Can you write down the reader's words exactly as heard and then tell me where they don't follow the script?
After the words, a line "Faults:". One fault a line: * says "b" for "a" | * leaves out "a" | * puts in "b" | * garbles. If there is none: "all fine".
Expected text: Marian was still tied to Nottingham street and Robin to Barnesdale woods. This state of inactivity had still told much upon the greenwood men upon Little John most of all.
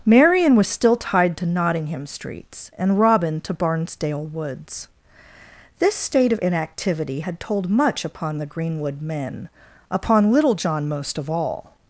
Marian was still tied to Nottingham streets and Robin to Barnesdale woods. This state of inactivity had told much upon the greenwood men upon Little John most of all.
Faults:
* says "streets" for "street"
* leaves out "still"